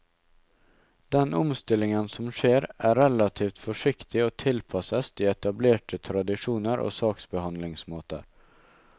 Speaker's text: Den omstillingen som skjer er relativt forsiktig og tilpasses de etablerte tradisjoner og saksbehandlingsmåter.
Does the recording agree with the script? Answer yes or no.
yes